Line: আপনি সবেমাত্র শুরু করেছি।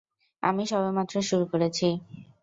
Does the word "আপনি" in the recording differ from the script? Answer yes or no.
yes